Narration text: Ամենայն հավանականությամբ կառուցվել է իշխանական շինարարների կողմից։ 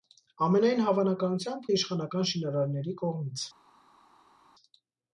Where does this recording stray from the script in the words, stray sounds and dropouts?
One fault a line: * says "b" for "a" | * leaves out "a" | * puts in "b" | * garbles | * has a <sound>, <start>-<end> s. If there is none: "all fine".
* leaves out "կառուցվել"